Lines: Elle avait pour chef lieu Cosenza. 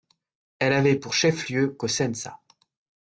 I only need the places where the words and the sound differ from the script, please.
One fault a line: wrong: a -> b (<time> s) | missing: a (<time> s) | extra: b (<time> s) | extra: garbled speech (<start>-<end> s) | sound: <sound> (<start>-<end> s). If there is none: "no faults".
no faults